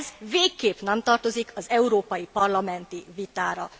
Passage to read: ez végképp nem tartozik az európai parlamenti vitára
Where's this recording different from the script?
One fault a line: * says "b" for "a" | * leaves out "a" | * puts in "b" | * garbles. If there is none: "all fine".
all fine